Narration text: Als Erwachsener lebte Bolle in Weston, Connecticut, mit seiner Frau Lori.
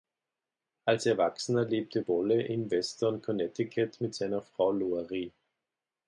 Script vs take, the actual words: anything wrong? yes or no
no